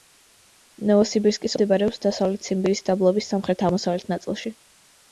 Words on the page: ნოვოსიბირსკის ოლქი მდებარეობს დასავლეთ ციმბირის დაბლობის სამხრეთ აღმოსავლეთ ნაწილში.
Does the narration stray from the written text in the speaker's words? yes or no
yes